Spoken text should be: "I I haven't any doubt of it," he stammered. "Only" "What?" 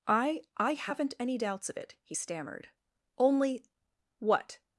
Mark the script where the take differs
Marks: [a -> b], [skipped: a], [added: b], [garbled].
"I I haven't any [doubt -> doubts] of it," he stammered. "Only" "What?"